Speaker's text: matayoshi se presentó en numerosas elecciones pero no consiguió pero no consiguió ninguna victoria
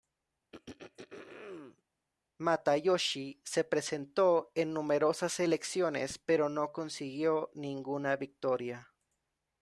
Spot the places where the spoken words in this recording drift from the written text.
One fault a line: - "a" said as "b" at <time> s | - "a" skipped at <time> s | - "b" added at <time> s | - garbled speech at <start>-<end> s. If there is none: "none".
- "pero no consiguió" skipped at 7.5 s